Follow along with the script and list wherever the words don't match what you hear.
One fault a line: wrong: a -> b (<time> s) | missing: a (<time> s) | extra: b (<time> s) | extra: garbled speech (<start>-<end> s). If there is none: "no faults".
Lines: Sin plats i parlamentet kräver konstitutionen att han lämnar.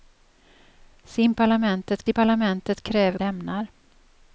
wrong: plats -> parlamentet (1.3 s)
missing: konstitutionen att han (3.2 s)